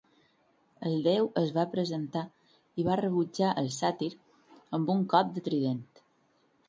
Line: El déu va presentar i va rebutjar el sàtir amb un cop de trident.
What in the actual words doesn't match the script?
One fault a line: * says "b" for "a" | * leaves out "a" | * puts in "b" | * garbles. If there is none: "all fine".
* puts in "es"